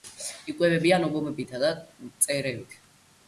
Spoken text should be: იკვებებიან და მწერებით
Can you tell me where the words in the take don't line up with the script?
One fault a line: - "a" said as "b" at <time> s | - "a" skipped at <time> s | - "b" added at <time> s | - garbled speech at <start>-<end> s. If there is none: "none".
- "ობობებითა" added at 1.1 s